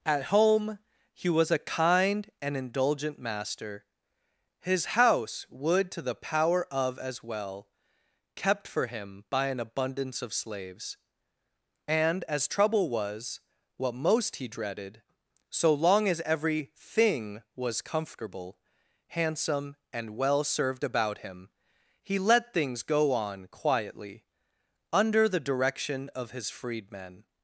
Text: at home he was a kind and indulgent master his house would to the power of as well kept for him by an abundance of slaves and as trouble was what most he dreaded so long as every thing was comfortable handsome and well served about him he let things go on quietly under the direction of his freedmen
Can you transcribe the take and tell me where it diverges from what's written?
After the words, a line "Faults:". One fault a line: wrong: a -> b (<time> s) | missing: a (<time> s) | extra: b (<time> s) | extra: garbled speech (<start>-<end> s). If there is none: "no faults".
at home he was a kind and indulgent master his house would to the power of as well kept for him by an abundance of slaves and as trouble was what most he dreaded so long as every thing was comfortable handsome and well served about him he let things go on quietly under the direction of his freedmen
Faults:
no faults